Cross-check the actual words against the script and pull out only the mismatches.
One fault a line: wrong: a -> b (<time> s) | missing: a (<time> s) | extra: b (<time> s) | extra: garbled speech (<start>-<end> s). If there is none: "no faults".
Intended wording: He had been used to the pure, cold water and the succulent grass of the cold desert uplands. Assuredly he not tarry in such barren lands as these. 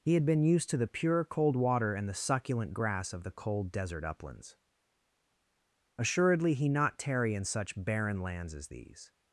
no faults